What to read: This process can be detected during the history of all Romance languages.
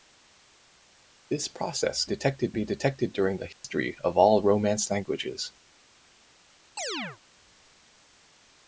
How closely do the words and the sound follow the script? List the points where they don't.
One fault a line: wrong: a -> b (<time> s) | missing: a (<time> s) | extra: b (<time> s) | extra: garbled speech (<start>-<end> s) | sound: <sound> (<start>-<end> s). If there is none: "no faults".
wrong: can -> detected (2.0 s)
sound: dropout (3.5-3.6 s)
sound: chirp (6.8-7.2 s)